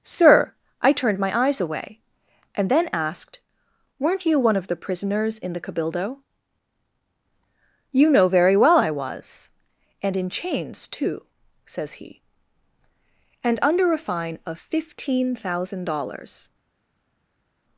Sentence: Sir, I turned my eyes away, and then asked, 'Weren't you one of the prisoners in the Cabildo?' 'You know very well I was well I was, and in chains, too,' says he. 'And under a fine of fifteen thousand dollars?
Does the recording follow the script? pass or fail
fail